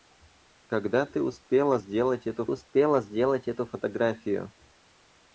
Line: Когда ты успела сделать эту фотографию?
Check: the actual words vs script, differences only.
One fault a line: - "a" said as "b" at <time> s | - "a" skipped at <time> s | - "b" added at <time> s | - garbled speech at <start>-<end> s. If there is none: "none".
- "успела сделать эту" added at 2.5 s